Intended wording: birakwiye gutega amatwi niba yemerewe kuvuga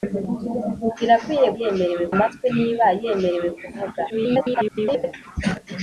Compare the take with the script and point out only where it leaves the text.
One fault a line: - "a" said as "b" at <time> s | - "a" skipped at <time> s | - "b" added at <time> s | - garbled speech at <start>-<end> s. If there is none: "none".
- "gutega" said as "yemerewe" at 1.6 s
- garbled speech at 4.1-5.1 s